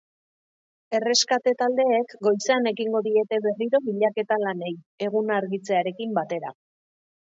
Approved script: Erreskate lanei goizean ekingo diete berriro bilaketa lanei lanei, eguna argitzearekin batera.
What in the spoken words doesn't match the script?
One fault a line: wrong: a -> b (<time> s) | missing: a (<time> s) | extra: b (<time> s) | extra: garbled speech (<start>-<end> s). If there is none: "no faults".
wrong: lanei -> taldeek (1.6 s)
missing: lanei (4.7 s)